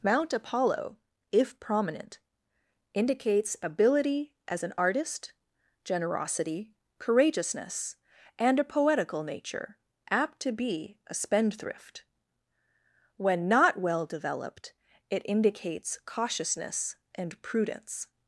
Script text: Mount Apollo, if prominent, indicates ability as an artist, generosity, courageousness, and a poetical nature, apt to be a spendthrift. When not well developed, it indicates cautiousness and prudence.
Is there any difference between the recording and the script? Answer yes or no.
no